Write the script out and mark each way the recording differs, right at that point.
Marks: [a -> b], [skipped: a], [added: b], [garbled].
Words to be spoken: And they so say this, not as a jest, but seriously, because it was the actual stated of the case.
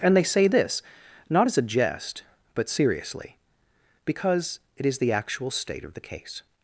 And they [skipped: so] say this, not as a jest, but seriously, because it [was -> is] the actual [stated -> state] of the case.